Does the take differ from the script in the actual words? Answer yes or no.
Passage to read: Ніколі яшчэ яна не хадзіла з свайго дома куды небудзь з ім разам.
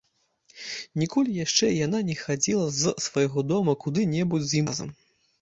yes